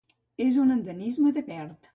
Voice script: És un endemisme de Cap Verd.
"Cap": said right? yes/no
no